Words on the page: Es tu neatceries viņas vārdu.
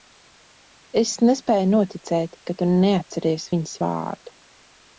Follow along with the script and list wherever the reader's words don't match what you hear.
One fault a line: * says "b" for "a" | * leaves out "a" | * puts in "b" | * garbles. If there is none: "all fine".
* puts in "nespēju noticēt ka"